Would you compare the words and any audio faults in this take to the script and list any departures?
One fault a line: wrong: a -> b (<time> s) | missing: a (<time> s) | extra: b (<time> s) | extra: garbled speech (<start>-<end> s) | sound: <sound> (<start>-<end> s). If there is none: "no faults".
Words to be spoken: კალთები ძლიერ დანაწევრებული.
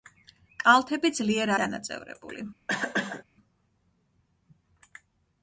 sound: cough (2.7-3.2 s)